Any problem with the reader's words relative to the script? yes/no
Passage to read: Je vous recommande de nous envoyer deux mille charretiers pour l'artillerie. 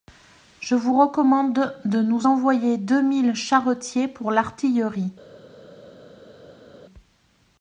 no